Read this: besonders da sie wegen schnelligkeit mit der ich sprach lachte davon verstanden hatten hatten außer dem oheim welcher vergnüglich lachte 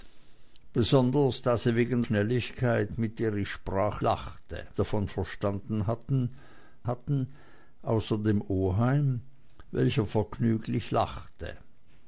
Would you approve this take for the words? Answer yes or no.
yes